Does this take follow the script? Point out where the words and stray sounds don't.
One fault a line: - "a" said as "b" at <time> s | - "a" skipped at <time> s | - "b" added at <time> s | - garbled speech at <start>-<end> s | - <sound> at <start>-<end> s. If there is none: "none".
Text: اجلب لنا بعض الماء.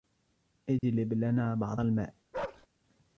- dropout at 0.8-0.8 s
- bark at 2.3-2.7 s